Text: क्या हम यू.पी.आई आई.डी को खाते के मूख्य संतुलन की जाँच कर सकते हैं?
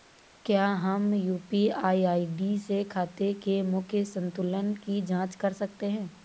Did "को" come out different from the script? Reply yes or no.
yes